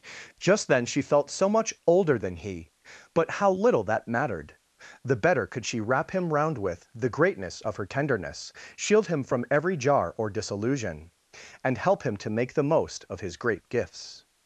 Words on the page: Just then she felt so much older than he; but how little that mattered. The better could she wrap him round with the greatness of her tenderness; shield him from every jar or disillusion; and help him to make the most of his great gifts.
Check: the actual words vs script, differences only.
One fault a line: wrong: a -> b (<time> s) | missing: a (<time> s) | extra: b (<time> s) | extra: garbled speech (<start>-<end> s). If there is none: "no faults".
no faults